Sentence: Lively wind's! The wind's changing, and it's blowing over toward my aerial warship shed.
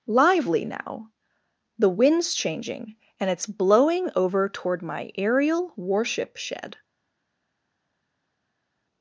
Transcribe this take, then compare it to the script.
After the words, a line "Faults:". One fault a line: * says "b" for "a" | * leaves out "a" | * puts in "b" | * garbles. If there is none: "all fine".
Lively now! The wind's changing, and it's blowing over toward my aerial warship shed.
Faults:
* says "now" for "wind's"